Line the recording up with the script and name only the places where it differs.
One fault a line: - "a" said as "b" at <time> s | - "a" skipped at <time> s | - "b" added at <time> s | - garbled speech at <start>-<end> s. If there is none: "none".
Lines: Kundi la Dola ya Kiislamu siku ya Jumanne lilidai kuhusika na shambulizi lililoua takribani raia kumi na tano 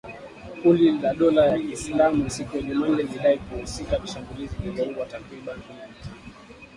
- "raia" skipped at 5.6 s